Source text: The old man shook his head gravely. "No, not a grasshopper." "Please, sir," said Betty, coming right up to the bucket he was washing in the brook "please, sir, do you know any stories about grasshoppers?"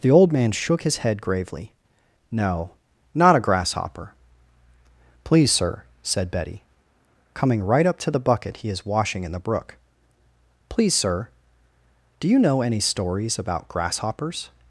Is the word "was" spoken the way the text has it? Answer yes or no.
no